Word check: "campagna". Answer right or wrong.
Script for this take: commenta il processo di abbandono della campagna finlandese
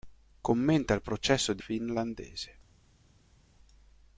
wrong